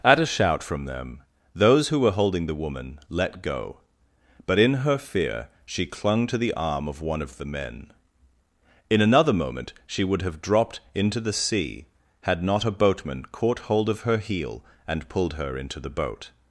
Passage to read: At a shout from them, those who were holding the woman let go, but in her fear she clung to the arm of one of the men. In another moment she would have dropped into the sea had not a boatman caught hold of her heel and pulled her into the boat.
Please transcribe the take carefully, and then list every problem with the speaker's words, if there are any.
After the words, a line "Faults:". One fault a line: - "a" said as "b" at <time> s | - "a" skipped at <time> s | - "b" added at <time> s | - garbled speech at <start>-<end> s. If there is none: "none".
At a shout from them, those who were holding the woman let go, but in her fear she clung to the arm of one of the men. In another moment she would have dropped into the sea had not a boatman caught hold of her heel and pulled her into the boat.
Faults:
none